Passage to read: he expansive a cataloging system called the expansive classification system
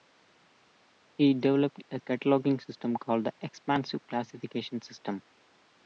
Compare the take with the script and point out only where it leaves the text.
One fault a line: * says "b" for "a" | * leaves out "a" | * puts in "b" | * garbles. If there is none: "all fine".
* says "developed" for "expansive"